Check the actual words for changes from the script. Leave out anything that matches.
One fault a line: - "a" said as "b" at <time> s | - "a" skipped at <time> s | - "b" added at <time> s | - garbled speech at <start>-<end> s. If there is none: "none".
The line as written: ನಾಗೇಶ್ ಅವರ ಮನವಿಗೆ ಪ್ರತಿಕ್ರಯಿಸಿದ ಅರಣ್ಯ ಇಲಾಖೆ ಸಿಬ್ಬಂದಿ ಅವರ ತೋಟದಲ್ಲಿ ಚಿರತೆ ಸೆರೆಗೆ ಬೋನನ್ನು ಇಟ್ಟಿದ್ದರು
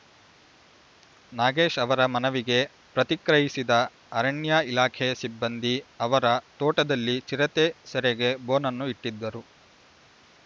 none